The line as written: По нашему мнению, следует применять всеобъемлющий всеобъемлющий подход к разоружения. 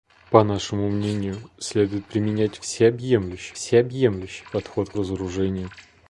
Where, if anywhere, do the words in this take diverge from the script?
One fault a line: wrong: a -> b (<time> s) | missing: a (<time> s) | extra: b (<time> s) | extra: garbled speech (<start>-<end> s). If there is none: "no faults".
no faults